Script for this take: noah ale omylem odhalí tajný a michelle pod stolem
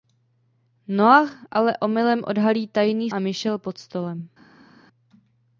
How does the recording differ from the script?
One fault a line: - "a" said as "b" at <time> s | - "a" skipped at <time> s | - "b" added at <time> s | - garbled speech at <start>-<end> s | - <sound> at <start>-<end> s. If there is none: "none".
none